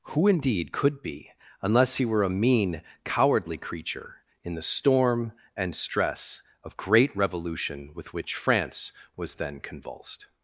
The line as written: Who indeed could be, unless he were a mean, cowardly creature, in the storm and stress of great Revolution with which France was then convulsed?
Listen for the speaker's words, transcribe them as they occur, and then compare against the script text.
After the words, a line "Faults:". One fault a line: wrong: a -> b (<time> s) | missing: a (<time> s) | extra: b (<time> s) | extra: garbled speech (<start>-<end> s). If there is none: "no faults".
Who indeed could be, unless he were a mean, cowardly creature, in the storm and stress of great Revolution with which France was then convulsed?
Faults:
no faults